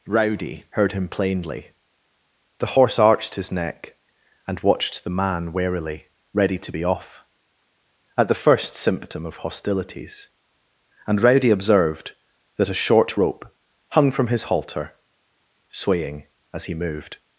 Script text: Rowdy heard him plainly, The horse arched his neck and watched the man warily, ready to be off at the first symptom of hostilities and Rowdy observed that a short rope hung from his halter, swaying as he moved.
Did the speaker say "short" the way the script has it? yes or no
yes